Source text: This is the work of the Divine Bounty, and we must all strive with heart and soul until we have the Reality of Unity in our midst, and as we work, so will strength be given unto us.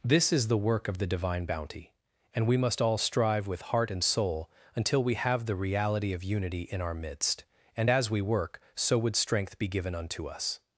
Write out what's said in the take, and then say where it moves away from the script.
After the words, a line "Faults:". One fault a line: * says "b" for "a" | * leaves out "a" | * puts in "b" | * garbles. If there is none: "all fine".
This is the work of the Divine Bounty, and we must all strive with heart and soul until we have the Reality of Unity in our midst, and as we work, so would strength be given unto us.
Faults:
* says "would" for "will"